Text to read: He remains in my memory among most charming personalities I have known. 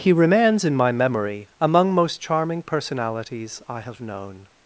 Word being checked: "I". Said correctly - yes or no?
yes